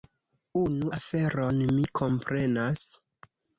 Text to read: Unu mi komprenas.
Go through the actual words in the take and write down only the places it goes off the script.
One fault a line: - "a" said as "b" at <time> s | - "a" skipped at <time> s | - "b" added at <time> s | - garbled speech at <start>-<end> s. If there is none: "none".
- "aferon" added at 1.0 s